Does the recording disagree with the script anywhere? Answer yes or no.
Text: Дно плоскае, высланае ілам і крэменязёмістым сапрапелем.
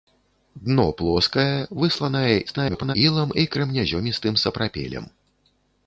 yes